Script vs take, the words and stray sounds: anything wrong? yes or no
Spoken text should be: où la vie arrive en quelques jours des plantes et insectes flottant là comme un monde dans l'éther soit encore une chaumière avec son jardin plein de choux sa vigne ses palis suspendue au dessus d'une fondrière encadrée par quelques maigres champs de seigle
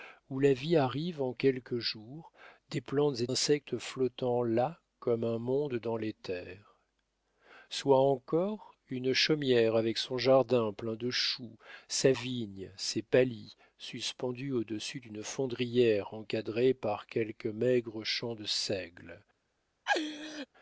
yes